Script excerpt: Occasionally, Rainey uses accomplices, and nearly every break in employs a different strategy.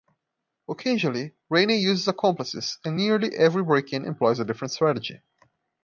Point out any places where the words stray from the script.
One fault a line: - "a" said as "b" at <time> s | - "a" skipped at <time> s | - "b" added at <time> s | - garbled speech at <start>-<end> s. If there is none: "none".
none